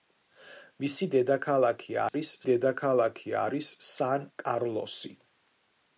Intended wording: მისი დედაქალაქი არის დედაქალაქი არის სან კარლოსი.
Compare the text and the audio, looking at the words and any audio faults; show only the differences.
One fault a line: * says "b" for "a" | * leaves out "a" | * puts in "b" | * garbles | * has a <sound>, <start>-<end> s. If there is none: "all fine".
* has a dropout, 2.1-2.1 s